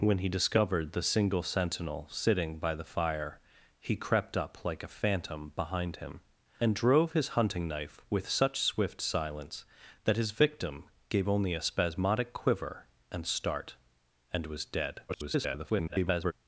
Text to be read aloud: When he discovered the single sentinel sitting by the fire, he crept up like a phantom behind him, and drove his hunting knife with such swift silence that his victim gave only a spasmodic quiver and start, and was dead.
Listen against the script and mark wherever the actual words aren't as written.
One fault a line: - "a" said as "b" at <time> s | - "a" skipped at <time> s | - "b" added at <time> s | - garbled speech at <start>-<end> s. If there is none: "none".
- garbled speech at 15.1-16.3 s